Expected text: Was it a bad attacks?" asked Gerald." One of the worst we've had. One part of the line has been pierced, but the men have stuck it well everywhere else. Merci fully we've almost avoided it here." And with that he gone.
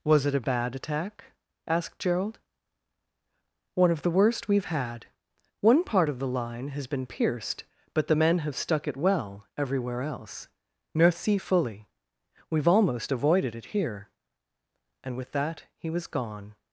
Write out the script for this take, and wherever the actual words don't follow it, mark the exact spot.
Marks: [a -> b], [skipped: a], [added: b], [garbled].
Was it a bad [attacks?" -> attack] asked Gerald." One of the worst we've had. One part of the line has been pierced, but the men have stuck it well everywhere else. Merci fully we've almost avoided it here." And with that he [added: was] gone.